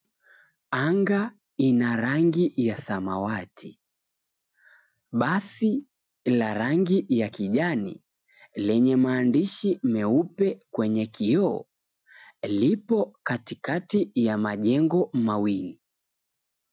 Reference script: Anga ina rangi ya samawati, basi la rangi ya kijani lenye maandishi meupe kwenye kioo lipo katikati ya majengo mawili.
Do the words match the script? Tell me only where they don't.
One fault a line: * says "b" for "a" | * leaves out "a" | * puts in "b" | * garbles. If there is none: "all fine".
all fine